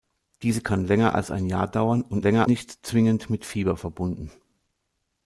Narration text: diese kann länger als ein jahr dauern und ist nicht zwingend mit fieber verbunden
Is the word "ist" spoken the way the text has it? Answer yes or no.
no